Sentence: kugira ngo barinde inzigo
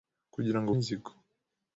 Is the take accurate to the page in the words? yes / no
no